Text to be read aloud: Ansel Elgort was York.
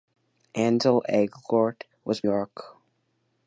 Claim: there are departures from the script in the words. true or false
false